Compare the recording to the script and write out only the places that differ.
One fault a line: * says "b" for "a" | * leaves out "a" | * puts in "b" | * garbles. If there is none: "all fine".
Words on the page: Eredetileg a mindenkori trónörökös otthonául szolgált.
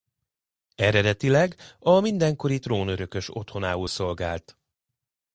all fine